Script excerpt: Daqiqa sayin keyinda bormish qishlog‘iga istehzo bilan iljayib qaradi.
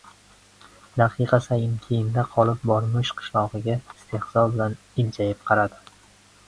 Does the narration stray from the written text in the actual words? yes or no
yes